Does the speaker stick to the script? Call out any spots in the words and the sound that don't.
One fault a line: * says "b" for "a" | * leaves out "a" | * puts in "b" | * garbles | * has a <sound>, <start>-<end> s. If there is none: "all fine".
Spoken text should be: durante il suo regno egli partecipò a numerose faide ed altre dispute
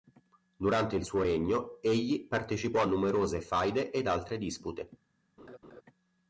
* has a laugh, 5.4-5.8 s